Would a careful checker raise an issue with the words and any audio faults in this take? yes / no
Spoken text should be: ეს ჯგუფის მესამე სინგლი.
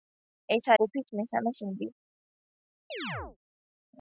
yes